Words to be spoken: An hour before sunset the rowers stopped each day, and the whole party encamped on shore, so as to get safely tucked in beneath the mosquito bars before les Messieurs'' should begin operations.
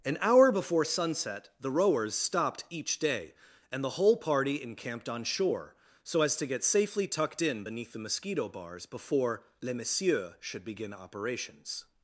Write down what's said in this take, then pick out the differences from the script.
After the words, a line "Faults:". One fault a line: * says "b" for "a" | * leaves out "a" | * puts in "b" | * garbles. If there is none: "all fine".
An hour before sunset the rowers stopped each day, and the whole party encamped on shore, so as to get safely tucked in beneath the mosquito bars before les Messieurs'' should begin operations.
Faults:
all fine